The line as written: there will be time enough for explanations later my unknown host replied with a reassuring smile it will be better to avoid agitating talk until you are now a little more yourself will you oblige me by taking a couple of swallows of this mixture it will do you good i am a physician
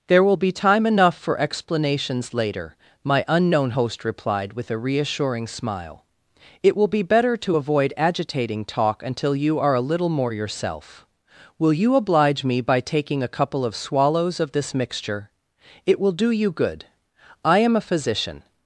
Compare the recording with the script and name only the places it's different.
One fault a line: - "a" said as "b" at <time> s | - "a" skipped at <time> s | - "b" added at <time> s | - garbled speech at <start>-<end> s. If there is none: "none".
- "now" skipped at 9.7 s